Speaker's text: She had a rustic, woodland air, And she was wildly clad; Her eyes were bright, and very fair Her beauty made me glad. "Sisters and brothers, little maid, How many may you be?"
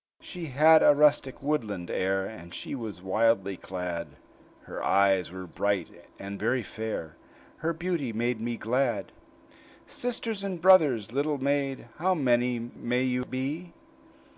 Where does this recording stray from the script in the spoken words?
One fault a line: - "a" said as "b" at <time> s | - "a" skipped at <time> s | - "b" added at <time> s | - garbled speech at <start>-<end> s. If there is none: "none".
none